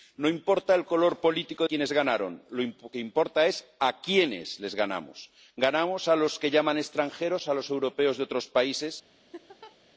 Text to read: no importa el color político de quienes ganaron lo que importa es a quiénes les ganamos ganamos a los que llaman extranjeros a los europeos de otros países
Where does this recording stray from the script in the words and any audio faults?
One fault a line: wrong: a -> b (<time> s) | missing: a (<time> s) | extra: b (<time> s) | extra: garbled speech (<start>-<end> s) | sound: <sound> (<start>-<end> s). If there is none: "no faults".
missing: de (1.6 s)
sound: laugh (9.3-9.8 s)